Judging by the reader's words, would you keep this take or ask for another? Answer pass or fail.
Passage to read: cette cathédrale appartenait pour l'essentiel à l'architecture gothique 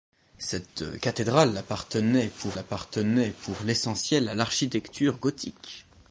fail